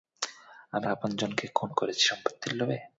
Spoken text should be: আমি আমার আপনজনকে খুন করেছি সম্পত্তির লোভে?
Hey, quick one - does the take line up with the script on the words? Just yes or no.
no